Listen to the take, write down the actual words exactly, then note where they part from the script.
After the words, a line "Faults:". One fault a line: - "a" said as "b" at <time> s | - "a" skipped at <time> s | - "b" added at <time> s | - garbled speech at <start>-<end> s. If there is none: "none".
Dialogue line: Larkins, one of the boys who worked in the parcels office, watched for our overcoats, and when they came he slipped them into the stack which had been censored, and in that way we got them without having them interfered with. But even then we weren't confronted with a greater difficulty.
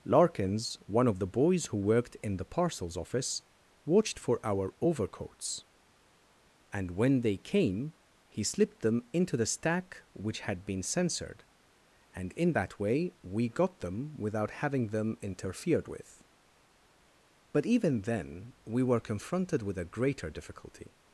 Larkins, one of the boys who worked in the parcels office, watched for our overcoats, and when they came he slipped them into the stack which had been censored, and in that way we got them without having them interfered with. But even then we were confronted with a greater difficulty.
Faults:
- "weren't" said as "were" at 18.8 s